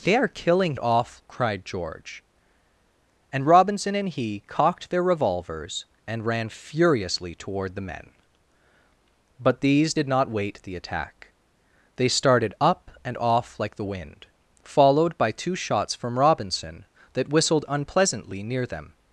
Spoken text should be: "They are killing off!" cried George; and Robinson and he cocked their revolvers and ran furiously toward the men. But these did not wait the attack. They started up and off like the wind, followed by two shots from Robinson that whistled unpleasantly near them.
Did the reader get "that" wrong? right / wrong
right